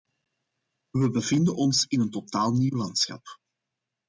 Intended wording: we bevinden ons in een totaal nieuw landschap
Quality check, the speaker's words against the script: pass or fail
pass